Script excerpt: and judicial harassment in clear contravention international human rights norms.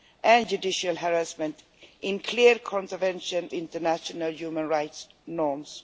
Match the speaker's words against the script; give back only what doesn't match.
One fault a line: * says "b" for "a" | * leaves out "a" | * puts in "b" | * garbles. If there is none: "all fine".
all fine